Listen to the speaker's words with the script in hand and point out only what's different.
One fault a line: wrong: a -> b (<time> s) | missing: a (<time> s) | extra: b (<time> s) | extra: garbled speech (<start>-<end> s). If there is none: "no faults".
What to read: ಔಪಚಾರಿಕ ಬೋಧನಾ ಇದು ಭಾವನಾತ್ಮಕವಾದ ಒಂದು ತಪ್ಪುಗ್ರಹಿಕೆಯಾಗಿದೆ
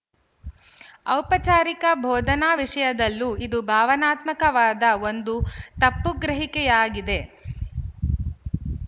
extra: ವಿಶಯದಲ್ಲೂ (2.6 s)